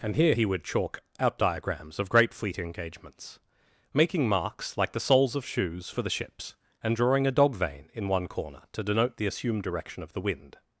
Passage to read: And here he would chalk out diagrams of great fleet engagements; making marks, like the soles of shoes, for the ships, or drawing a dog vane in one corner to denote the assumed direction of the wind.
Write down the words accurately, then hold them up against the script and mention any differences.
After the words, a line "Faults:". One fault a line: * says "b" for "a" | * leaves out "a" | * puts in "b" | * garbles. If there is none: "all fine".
And here he would chalk out diagrams of great fleet engagements; making marks, like the soles of shoes, for the ships, and drawing a dog vane in one corner to denote the assumed direction of the wind.
Faults:
* says "and" for "or"